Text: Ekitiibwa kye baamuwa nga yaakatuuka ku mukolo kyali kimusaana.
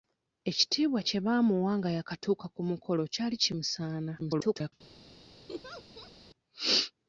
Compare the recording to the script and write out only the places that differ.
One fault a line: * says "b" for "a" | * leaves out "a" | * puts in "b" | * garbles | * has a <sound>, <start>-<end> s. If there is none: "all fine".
* garbles
* has a laugh, 5.5-6.1 s